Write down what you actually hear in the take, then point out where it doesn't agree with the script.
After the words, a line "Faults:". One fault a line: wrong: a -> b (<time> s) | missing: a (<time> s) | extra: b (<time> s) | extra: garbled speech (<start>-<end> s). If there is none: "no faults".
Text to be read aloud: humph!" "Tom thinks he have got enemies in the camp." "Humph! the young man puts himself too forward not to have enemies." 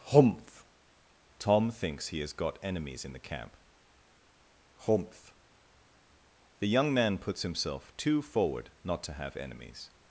humph!" "Tom thinks he has got enemies in the camp." "Humph! the young man puts himself too forward not to have enemies."
Faults:
wrong: have -> has (2.2 s)